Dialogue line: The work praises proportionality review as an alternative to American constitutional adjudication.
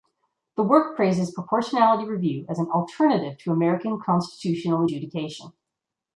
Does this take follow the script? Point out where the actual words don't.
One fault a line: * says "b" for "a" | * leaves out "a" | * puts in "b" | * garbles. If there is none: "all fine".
all fine